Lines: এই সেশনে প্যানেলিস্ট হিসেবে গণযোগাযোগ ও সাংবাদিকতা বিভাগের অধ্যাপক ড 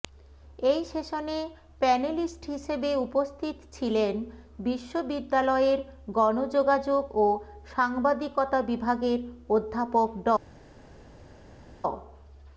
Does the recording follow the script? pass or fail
fail